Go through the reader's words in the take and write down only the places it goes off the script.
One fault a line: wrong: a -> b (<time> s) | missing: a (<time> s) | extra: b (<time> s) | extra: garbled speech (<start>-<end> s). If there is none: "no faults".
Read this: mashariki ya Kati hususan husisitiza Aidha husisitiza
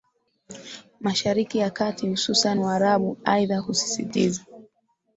wrong: husisitiza -> waarabu (2.6 s)